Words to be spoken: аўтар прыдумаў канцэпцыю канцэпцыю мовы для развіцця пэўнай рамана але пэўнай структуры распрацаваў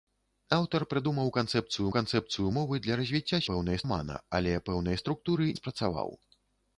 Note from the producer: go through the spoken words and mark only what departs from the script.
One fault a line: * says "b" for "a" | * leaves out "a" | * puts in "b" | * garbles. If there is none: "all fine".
all fine